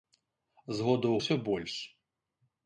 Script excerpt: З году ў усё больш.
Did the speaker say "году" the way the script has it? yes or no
yes